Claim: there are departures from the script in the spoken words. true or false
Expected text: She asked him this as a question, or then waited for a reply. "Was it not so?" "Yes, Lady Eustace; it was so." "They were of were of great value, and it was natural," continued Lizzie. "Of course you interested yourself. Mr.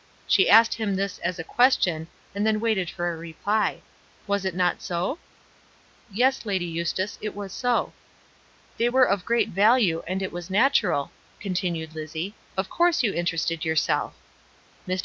true